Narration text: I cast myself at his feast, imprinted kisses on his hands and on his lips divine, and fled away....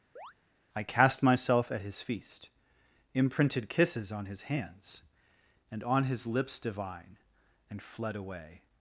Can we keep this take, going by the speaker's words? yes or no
yes